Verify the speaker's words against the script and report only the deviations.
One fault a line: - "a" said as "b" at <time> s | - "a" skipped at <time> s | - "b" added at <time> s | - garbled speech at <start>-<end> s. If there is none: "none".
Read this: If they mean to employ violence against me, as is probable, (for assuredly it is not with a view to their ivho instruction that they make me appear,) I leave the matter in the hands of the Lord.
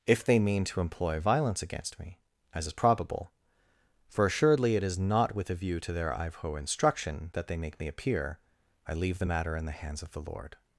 none